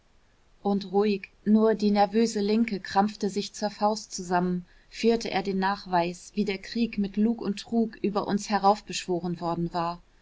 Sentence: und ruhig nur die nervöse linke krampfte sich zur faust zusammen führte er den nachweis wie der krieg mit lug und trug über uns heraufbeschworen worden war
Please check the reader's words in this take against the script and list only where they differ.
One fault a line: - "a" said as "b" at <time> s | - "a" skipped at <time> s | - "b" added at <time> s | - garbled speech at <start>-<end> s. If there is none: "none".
none